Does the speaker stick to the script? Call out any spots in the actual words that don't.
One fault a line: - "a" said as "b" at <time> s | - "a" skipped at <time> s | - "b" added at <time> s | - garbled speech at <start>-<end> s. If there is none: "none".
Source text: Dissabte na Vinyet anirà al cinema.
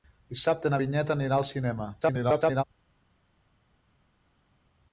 - garbled speech at 2.0-2.6 s